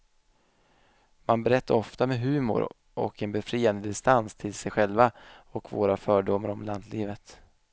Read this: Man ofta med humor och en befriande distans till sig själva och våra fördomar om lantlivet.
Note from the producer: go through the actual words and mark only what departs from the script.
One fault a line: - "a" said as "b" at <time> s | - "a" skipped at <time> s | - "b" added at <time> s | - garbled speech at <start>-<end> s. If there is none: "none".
- "berättar" added at 1.4 s